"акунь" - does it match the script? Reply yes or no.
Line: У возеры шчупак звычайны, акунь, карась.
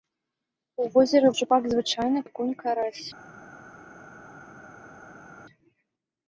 yes